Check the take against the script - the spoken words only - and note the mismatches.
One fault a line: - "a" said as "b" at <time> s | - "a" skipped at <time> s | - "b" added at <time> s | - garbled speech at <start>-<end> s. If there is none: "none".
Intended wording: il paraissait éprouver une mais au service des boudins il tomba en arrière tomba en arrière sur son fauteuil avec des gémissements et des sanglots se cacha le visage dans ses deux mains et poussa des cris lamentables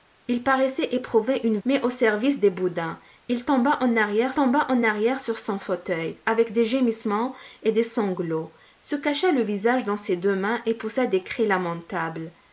none